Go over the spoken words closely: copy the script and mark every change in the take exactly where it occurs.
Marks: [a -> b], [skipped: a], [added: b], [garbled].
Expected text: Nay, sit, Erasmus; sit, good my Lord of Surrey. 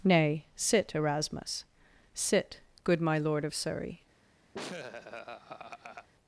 Nay, sit, Erasmus; sit, good my Lord of Surrey.